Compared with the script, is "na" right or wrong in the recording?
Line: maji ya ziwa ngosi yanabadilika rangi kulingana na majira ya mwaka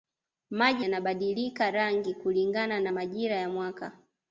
right